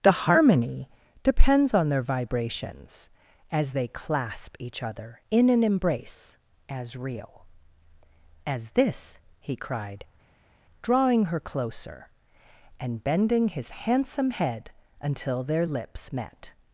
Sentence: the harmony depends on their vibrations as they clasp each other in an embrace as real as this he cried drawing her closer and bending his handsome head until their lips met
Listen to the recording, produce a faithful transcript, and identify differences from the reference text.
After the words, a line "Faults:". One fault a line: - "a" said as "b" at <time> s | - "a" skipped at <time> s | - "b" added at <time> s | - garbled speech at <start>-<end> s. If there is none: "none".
the harmony depends on their vibrations as they clasp each other in an embrace as real as this he cried drawing her closer and bending his handsome head until their lips met
Faults:
none